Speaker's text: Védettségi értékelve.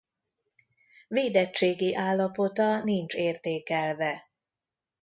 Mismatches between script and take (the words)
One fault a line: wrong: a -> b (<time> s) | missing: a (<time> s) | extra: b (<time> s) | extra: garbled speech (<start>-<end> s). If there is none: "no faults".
extra: állapota nincs (1.9 s)